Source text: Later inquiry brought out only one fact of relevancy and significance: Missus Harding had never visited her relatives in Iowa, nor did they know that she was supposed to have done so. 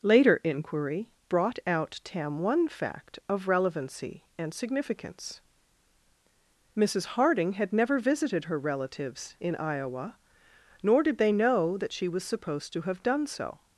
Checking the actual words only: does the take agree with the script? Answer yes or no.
no